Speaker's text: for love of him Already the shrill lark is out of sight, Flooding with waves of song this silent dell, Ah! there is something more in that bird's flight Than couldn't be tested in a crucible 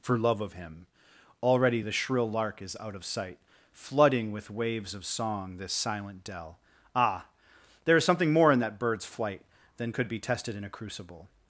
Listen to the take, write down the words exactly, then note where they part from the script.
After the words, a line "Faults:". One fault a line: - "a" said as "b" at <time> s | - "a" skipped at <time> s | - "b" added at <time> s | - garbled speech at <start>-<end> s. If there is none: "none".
for love of him Already the shrill lark is out of sight, Flooding with waves of song this silent dell, Ah! there is something more in that bird's flight Than could be tested in a crucible
Faults:
- "couldn't" said as "could" at 9.9 s